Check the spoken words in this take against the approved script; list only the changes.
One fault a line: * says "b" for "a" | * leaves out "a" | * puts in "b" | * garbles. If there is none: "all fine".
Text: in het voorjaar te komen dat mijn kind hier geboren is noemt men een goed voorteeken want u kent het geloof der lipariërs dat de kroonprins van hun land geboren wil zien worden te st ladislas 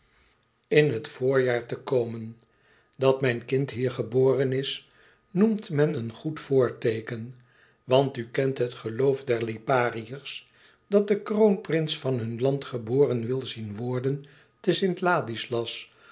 all fine